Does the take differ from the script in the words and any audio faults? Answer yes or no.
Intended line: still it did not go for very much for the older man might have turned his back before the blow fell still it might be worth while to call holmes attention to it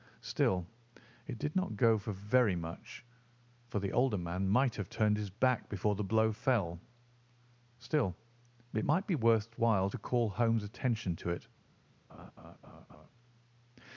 yes